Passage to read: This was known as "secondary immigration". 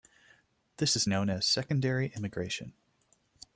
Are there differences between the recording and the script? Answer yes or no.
yes